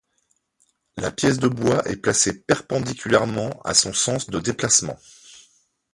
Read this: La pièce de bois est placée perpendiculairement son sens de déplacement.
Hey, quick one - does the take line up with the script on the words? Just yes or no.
no